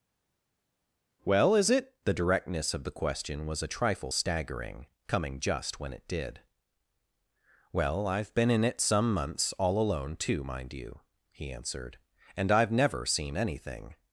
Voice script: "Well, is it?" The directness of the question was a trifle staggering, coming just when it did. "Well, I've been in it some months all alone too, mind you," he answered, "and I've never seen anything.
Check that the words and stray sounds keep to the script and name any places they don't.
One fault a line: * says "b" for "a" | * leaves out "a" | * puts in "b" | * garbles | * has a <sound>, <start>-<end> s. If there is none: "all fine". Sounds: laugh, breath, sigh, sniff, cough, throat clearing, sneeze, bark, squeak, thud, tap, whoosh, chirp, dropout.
all fine